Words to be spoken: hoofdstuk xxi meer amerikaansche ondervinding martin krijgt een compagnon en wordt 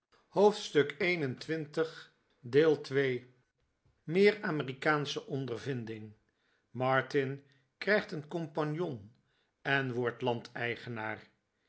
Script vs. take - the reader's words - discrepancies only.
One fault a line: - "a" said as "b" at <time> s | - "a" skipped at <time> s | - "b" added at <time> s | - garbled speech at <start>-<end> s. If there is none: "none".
none